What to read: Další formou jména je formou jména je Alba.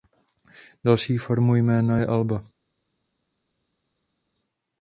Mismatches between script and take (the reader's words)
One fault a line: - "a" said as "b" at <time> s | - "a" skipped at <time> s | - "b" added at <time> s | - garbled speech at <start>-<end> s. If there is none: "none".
- "formou jména je" skipped at 2.1 s